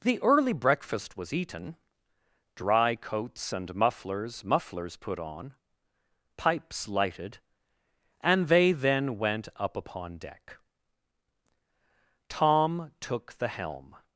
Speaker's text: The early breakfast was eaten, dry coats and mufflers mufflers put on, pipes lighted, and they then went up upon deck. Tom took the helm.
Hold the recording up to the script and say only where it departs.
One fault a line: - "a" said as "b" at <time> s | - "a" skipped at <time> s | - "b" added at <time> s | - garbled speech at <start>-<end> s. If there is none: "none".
none